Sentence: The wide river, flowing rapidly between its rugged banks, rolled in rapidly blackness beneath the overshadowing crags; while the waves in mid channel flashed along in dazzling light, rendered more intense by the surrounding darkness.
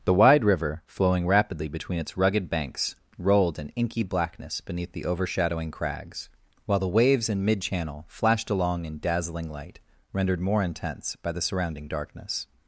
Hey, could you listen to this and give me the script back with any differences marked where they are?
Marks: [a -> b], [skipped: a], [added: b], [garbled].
The wide river, flowing rapidly between its rugged banks, rolled in [rapidly -> inky] blackness beneath the overshadowing crags; while the waves in mid channel flashed along in dazzling light, rendered more intense by the surrounding darkness.